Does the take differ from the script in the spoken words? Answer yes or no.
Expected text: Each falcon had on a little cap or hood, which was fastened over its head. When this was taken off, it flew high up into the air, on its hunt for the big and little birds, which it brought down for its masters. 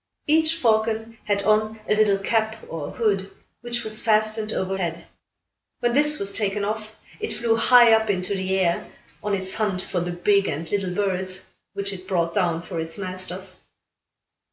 yes